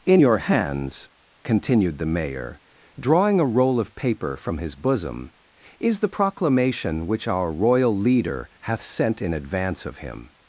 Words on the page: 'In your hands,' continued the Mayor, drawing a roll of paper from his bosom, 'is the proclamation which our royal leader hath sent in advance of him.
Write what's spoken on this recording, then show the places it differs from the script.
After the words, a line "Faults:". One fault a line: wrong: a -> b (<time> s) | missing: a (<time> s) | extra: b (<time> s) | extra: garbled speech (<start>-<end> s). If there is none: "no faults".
'In your hands,' continued the Mayor, drawing a roll of paper from his bosom, 'is the proclamation which our royal leader hath sent in advance of him.
Faults:
no faults